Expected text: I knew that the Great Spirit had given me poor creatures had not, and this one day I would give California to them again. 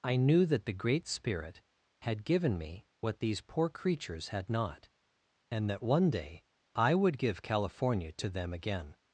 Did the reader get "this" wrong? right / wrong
wrong